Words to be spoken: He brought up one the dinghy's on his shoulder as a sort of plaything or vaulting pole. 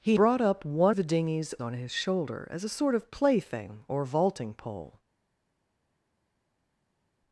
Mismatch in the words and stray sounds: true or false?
false